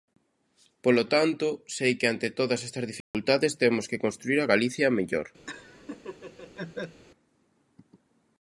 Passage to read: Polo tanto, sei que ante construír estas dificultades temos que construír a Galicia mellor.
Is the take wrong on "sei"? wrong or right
right